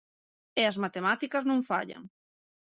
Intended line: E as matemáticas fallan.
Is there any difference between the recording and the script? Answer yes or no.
yes